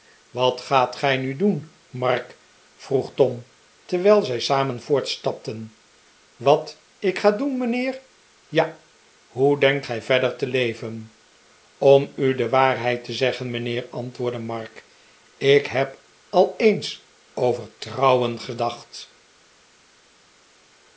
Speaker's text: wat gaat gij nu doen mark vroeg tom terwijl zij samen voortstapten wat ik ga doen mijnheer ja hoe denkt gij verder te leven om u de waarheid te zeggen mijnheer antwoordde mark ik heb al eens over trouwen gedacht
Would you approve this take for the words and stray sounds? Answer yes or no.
yes